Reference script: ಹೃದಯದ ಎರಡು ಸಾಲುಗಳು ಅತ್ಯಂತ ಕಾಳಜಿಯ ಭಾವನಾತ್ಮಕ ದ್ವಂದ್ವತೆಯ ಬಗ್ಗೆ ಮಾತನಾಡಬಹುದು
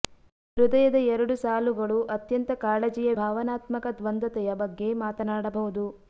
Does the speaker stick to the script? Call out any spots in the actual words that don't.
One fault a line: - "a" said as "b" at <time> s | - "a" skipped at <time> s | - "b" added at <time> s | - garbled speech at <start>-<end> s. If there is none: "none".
none